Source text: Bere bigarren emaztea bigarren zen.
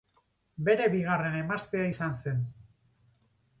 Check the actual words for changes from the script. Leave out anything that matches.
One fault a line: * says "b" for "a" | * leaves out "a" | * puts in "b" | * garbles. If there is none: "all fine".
* says "izan" for "bigarren"